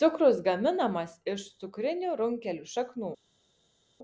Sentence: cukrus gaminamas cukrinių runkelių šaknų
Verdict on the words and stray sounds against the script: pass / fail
fail